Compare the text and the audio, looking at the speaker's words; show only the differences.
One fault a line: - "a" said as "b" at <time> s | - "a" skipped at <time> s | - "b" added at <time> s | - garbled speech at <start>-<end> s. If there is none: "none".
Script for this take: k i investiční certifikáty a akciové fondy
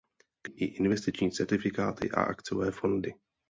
none